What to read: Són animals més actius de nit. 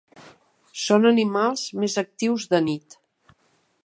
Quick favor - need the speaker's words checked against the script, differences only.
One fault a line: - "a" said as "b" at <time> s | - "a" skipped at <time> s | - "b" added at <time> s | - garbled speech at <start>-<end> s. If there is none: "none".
none